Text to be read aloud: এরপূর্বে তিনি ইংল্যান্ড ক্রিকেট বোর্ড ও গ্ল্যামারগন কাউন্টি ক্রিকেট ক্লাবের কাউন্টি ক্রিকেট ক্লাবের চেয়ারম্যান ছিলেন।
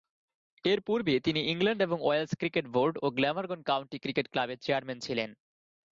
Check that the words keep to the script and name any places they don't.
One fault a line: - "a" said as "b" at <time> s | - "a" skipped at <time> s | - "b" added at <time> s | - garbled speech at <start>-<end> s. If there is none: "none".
- "এবং ওয়েলস" added at 1.8 s
- "কাউন্টি ক্রিকেট ক্লাবের" skipped at 4.6 s